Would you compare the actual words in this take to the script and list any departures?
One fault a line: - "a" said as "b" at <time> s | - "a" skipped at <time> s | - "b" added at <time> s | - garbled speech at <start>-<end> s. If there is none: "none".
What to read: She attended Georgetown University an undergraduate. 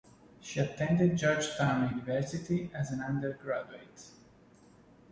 - "as" added at 2.7 s